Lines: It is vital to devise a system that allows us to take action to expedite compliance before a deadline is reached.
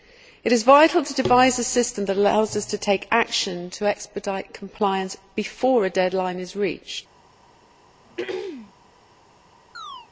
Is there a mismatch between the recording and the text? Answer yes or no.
no